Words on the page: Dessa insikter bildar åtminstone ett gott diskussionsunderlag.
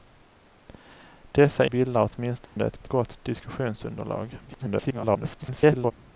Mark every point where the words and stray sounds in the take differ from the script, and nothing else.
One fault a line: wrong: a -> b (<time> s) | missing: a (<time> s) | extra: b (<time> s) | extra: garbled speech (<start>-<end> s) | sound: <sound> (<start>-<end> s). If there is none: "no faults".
missing: insikter (1.6 s)
sound: dropout (2.5-2.6 s)
extra: ett (2.8 s)
extra: garbled speech (4.5-5.9 s)